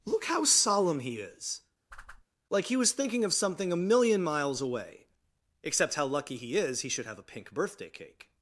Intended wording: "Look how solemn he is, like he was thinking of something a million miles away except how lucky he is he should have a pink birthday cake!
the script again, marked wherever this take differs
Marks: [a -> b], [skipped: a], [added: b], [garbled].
"Look how solemn he is, like he was thinking of something a million miles away except how lucky he is he should have a pink birthday cake!